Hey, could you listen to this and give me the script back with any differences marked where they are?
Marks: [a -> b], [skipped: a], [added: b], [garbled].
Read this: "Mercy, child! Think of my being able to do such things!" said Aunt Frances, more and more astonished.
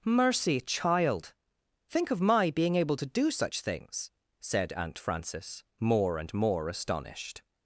"Mercy, child! Think of my being able to do such things!" said Aunt Frances, more and more astonished.